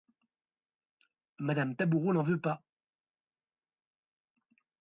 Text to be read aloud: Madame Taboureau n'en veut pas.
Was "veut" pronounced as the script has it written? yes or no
yes